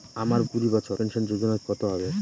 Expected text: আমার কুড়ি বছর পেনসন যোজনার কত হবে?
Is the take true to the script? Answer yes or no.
yes